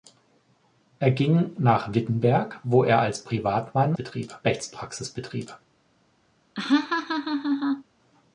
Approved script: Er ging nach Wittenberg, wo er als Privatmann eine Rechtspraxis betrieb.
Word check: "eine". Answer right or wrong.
wrong